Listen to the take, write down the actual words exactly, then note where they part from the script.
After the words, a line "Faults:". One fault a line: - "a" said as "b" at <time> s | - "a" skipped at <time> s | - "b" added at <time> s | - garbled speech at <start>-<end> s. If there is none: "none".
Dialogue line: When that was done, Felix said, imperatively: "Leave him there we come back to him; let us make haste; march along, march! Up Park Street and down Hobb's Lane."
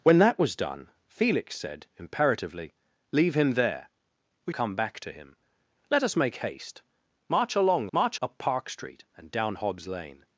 When that was done, Felix said, imperatively: "Leave him there we come back to him; let us make haste; march along, march! Up Park Street and down Hobb's Lane."
Faults:
none